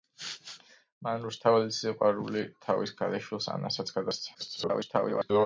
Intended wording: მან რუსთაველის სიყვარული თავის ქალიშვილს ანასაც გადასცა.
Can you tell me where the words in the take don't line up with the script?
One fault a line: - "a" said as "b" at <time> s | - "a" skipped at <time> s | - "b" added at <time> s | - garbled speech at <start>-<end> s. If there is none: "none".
- garbled speech at 4.3-5.5 s